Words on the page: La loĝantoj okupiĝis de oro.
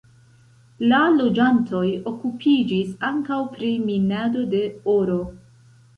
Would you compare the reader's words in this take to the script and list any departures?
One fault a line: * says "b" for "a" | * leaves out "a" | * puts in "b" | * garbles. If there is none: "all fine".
* puts in "ankaŭ pri minado"